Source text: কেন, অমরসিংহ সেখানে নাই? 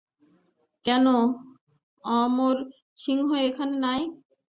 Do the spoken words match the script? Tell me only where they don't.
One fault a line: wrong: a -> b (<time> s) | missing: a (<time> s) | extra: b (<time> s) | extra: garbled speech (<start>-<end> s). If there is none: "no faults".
wrong: সেখানে -> এখানে (3.5 s)